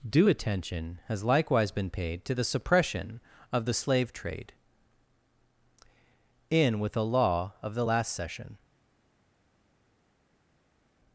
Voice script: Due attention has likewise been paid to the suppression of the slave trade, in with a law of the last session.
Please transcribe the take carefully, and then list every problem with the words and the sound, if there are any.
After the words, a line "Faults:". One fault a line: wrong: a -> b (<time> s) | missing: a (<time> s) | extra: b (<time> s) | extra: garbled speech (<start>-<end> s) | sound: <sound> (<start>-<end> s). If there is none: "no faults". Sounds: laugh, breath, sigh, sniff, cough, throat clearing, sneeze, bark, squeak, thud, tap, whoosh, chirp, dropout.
Due attention has likewise been paid to the suppression of the slave trade, in with a law of the last session.
Faults:
no faults